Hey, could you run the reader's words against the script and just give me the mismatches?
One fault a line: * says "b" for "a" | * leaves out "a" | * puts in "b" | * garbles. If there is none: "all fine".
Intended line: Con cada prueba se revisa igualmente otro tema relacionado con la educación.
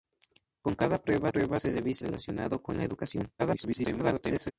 * puts in "prueba"
* leaves out "igualmente otro tema"
* garbles